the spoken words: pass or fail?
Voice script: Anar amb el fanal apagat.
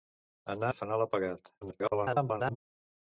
fail